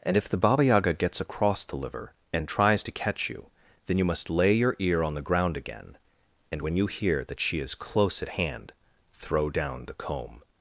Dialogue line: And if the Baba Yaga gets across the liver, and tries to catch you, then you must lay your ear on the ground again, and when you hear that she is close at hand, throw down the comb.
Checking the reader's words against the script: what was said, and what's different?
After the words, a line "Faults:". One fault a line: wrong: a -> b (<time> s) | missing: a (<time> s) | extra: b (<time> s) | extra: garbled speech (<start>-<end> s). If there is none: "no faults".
And if the Baba Yaga gets across the liver, and tries to catch you, then you must lay your ear on the ground again, and when you hear that she is close at hand, throw down the comb.
Faults:
no faults